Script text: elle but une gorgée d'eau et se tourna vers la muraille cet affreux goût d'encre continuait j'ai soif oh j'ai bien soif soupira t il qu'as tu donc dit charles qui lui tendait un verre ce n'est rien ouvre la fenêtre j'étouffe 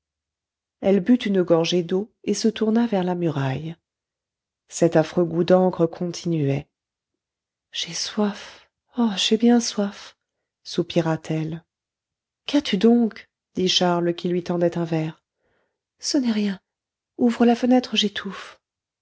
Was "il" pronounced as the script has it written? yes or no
no